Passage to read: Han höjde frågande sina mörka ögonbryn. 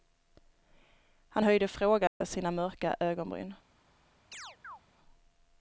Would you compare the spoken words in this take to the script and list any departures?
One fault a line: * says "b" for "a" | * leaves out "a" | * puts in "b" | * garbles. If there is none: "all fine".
all fine